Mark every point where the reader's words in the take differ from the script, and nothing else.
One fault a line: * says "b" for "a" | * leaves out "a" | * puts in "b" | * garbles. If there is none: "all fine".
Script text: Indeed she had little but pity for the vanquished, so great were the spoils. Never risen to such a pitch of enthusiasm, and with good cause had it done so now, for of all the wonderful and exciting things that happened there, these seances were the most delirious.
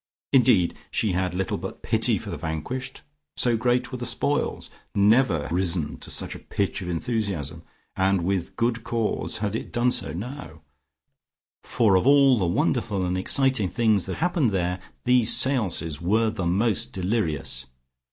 all fine